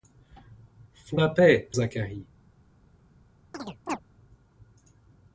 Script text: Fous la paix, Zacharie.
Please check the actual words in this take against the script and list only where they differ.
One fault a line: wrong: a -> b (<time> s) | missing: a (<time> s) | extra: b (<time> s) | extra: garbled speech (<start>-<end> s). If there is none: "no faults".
no faults